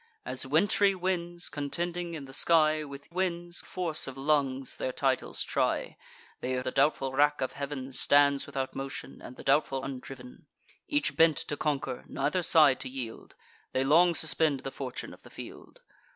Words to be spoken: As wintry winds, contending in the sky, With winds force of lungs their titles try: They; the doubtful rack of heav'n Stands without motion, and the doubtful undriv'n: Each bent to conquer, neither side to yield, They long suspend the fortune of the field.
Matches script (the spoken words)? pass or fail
pass